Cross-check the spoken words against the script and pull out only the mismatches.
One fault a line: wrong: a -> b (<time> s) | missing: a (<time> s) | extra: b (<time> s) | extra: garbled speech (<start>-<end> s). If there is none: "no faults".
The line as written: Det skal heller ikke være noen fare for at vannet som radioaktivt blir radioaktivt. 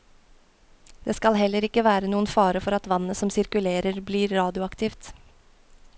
wrong: radioaktivt -> sirkulerer (3.4 s)